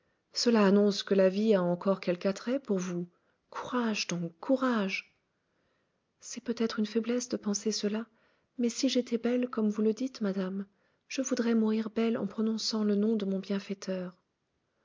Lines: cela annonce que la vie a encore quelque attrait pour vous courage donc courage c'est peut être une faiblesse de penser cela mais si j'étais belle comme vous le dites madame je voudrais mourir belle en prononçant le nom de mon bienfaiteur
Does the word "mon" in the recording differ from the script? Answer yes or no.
no